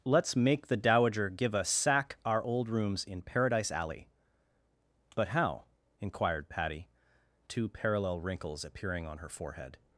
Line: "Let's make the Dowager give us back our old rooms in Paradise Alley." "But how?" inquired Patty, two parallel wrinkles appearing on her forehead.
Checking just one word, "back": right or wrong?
wrong